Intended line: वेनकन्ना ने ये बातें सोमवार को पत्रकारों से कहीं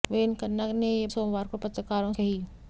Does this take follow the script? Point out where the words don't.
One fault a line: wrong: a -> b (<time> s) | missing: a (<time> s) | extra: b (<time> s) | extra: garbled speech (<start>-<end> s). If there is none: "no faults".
missing: बातें (1.1 s)
missing: से (2.1 s)